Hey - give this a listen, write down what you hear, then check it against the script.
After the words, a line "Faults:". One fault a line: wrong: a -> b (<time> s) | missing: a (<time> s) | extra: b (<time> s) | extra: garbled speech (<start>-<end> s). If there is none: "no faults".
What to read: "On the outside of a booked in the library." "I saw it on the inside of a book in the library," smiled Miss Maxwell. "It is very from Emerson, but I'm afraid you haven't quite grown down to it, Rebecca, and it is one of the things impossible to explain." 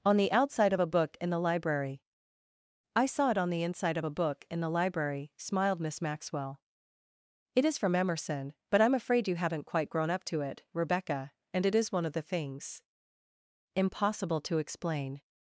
"On the outside of a book in the library." "I saw it on the inside of a book in the library," smiled Miss Maxwell. "It is from Emerson, but I'm afraid you haven't quite grown up to it, Rebecca, and it is one of the things impossible to explain."
Faults:
wrong: booked -> book (0.9 s)
missing: very (7.8 s)
wrong: down -> up (10.1 s)